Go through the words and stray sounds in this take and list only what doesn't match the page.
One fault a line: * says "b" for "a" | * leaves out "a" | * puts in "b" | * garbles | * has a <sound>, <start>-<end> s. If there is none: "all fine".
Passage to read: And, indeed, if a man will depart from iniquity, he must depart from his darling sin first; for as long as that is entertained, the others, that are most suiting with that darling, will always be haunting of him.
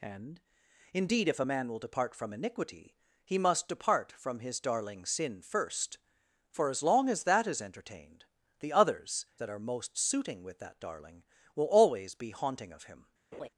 * has a laugh, 13.3-13.5 s